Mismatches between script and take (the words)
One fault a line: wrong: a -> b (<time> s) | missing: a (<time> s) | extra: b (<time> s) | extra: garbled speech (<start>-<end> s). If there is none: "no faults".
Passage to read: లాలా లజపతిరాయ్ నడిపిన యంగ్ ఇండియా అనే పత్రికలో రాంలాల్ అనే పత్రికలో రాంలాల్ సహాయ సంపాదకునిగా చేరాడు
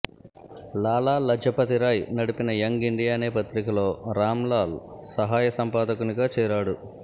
missing: అనే పత్రికలో రాంలాల్ (4.8 s)